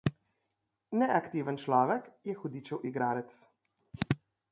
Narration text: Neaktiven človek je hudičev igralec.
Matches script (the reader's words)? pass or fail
pass